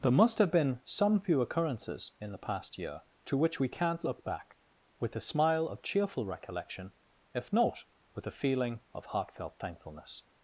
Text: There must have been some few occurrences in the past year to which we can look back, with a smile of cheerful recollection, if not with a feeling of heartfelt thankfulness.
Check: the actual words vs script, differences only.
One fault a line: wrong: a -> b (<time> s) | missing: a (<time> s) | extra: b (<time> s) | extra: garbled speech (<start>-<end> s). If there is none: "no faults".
wrong: can -> can't (3.7 s)